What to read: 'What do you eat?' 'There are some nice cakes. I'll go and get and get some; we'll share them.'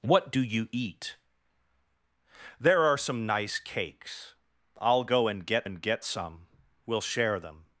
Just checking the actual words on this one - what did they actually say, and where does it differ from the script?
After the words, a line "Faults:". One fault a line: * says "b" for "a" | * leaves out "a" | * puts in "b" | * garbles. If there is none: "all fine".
'What do you eat?' 'There are some nice cakes. I'll go and get and get some; we'll share them.'
Faults:
all fine